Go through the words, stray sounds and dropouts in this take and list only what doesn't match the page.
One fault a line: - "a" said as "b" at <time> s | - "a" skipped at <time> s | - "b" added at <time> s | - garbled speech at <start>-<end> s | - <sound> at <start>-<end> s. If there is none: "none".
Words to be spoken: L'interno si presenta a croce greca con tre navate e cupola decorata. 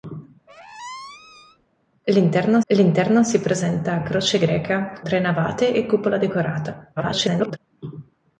- squeak at 0.5-1.7 s
- "l'interno" added at 2.7 s
- "con" skipped at 5.0 s
- garbled speech at 7.0-7.6 s